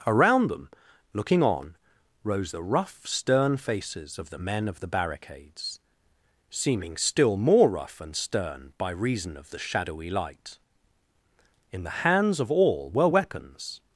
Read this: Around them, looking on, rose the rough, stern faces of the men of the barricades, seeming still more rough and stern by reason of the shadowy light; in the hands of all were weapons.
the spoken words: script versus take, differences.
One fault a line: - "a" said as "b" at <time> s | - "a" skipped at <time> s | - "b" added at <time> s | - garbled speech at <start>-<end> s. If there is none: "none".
none